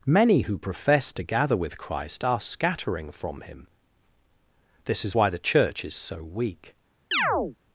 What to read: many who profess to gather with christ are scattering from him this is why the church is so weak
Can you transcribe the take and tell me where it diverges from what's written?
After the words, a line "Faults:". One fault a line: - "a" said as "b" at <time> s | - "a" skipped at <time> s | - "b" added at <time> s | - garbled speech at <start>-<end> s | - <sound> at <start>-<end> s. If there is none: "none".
many who profess to gather with christ are scattering from him this is why the church is so weak
Faults:
- chirp at 7.1-7.6 s